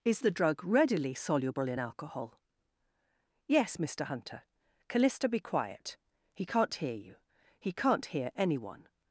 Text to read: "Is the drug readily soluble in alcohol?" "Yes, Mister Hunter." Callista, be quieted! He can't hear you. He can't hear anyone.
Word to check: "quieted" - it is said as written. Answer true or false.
false